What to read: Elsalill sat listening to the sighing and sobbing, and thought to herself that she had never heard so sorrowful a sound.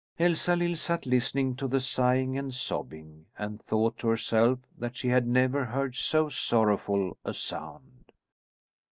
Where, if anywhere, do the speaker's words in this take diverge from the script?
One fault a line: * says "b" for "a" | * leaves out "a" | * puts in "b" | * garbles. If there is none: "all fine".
all fine